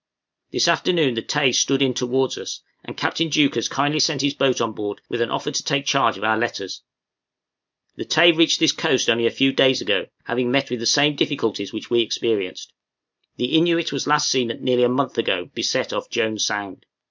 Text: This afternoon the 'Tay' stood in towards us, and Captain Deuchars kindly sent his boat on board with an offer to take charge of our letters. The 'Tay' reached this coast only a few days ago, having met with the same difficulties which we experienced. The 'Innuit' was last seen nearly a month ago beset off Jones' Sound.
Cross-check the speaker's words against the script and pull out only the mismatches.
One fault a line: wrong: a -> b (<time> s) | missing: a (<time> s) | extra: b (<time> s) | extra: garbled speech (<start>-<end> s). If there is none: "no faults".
no faults